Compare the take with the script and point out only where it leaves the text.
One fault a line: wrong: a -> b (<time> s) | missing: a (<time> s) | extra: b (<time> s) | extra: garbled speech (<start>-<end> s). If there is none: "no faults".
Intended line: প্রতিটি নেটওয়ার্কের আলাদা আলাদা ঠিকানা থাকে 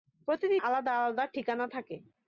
missing: নেটওয়ার্কের (0.6 s)